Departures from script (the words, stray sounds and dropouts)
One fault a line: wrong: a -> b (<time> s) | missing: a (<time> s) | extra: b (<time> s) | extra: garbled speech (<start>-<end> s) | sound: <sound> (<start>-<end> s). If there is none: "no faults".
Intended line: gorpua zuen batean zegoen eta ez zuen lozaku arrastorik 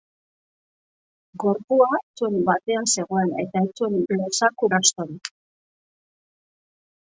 no faults